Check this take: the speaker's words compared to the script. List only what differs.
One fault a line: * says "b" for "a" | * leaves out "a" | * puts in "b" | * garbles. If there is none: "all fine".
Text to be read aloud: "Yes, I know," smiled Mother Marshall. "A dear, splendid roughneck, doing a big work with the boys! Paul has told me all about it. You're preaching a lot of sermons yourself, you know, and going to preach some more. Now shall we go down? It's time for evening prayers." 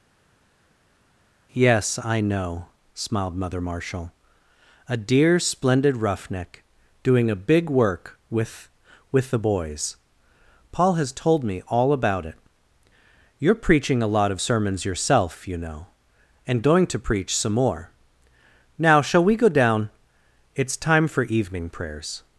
* puts in "with"